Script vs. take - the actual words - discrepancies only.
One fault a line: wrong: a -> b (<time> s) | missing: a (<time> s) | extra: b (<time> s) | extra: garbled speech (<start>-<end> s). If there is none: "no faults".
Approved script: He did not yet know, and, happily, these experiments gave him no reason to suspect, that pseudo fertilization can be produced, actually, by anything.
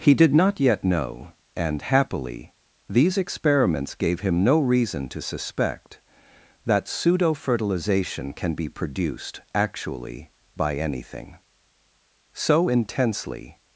extra: So intensely (12.3 s)